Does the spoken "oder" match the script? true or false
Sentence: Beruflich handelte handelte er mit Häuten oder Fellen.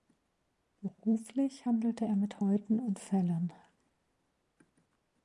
false